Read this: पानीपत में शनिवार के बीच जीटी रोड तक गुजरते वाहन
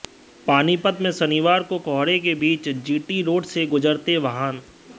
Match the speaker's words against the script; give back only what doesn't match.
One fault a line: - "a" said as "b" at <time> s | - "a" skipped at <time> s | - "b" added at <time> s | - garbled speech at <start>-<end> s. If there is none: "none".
- "को कोहरे" added at 1.6 s
- "तक" said as "से" at 3.5 s